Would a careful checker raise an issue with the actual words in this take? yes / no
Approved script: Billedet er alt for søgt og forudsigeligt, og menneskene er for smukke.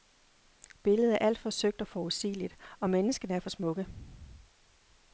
no